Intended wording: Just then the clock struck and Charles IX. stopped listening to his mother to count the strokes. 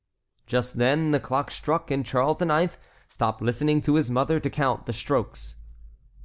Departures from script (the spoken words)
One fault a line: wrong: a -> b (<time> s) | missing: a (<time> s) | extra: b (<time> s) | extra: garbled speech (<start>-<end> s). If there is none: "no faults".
no faults